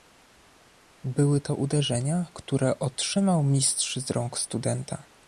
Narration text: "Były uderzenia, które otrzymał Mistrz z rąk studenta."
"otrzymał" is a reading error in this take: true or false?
false